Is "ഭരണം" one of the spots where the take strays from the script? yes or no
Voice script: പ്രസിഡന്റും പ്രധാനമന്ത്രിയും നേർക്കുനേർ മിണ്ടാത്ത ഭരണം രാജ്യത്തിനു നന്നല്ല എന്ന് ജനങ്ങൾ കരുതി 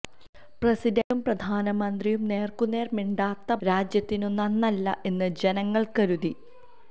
yes